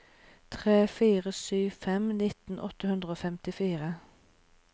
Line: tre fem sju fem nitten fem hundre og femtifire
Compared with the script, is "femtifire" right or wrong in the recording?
right